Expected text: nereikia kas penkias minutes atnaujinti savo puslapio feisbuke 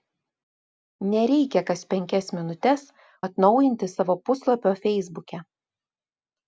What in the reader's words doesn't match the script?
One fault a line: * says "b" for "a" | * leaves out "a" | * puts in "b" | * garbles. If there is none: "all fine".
all fine